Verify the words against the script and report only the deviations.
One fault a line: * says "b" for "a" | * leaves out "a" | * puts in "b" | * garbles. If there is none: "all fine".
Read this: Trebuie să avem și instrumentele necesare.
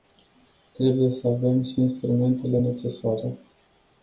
all fine